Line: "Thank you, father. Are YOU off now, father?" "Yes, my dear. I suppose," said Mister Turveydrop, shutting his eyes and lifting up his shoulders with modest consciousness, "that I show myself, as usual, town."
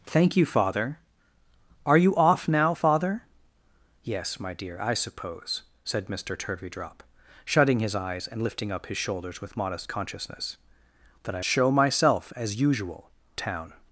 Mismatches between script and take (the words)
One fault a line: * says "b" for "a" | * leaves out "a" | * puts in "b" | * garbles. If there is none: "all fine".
all fine